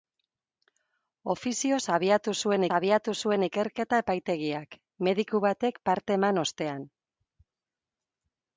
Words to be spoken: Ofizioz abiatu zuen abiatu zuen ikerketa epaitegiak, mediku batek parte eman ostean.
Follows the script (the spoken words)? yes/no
yes